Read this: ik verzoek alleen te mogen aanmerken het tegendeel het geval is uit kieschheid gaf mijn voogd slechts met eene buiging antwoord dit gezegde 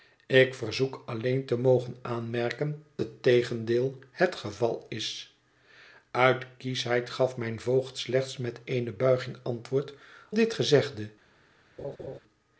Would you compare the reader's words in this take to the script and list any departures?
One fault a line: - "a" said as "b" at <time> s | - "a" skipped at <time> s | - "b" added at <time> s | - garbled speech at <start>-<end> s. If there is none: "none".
none